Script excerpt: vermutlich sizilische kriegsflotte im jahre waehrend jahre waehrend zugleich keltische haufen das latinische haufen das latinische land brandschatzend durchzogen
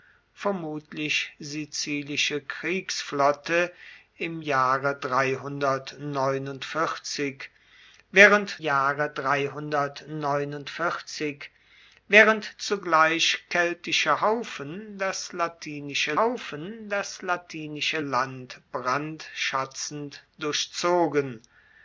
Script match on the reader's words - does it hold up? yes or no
yes